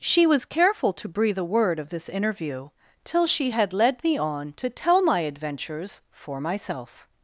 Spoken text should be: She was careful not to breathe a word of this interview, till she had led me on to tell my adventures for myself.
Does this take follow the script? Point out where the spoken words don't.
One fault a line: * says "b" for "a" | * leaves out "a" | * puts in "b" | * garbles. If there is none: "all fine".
* leaves out "not"